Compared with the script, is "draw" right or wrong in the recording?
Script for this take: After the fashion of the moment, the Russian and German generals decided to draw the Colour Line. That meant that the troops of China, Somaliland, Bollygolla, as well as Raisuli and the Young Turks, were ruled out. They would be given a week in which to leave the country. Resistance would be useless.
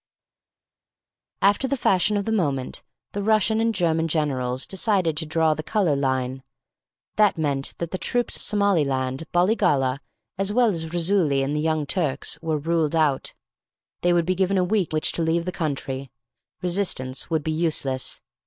right